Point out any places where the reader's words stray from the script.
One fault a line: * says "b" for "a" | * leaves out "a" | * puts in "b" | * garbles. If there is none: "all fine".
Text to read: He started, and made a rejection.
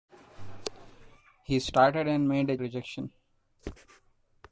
all fine